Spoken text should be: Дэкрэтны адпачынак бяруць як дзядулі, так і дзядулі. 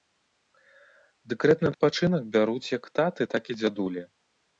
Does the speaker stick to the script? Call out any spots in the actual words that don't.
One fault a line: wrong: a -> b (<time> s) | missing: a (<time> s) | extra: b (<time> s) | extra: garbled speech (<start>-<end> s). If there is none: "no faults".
wrong: дзядулі -> таты (3.0 s)